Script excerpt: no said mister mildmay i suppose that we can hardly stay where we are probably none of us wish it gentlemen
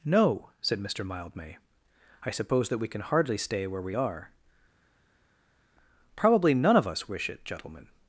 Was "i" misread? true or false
false